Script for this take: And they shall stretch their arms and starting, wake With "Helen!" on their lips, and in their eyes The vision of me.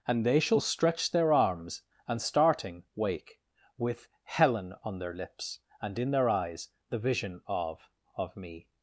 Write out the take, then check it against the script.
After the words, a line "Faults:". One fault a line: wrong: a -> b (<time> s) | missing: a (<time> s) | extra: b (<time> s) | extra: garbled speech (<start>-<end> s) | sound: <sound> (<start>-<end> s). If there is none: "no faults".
And they shall stretch their arms and starting, wake With "Helen!" on their lips, and in their eyes The vision of of me.
Faults:
extra: of (8.1 s)